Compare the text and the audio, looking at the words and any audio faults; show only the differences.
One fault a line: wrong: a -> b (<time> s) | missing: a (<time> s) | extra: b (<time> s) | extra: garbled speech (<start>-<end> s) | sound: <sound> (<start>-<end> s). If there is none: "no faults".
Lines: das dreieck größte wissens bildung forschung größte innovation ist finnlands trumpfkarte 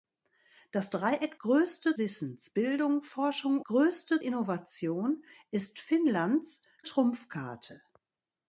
no faults